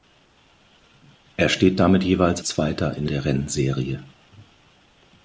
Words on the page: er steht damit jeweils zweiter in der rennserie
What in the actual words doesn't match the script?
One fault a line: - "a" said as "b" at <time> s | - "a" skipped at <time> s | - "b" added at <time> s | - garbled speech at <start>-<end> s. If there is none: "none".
none